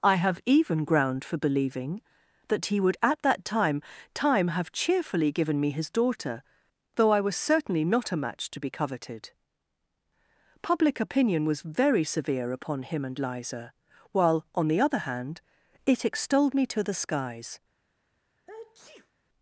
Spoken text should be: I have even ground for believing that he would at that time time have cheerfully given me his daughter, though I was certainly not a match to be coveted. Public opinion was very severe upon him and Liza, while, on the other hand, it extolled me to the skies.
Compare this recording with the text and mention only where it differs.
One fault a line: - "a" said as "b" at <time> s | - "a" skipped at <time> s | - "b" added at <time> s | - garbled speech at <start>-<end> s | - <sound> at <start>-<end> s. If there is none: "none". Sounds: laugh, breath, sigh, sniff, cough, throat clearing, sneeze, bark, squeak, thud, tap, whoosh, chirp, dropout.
- sneeze at 18.4-19.1 s